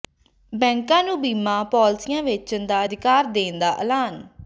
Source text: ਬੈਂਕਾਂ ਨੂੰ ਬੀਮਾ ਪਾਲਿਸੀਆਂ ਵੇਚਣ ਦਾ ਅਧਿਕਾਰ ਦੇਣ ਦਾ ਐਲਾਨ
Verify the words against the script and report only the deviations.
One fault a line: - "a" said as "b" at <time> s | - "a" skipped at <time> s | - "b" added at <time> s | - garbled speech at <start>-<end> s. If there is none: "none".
none